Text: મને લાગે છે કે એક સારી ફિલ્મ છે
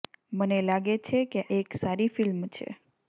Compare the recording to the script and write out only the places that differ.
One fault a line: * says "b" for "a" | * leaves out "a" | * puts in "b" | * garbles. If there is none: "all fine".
all fine